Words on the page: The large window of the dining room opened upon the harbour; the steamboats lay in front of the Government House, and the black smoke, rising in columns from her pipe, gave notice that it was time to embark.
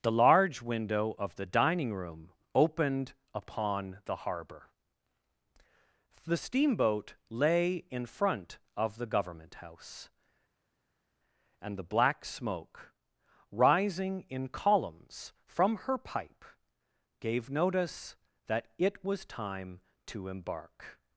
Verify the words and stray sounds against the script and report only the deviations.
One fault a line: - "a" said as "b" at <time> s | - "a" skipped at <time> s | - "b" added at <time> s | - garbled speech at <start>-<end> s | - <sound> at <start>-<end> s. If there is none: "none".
- "steamboats" said as "steamboat" at 6.4 s